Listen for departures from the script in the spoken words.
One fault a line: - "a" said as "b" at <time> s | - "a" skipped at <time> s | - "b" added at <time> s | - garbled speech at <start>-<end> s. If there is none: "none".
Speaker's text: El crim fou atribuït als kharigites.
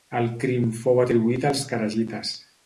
none